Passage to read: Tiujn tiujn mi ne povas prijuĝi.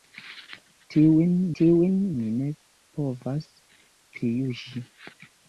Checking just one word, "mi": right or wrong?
right